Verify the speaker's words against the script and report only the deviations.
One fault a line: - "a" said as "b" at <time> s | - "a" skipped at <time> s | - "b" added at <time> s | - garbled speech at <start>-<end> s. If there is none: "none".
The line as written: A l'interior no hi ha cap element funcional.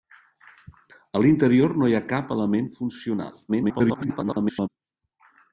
- garbled speech at 3.5-4.7 s